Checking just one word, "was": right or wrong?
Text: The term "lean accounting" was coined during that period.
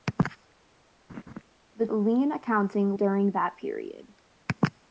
wrong